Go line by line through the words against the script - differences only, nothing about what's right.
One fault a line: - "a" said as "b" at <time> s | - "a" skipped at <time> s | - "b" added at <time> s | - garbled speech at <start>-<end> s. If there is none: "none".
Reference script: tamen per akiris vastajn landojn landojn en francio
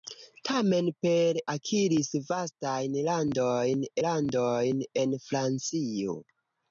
none